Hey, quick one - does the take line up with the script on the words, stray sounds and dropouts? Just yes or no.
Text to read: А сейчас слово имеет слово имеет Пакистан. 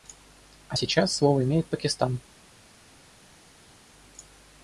no